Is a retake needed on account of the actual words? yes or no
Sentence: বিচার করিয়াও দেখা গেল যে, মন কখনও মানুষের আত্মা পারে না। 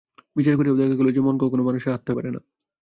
no